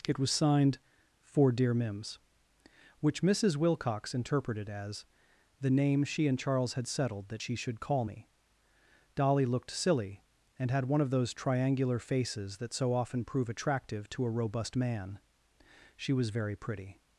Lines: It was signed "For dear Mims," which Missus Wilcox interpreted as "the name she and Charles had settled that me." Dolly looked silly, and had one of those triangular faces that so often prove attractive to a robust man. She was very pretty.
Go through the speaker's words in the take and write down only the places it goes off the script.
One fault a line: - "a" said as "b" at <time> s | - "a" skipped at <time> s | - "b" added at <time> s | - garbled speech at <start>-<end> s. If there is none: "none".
- "she should call" added at 7.4 s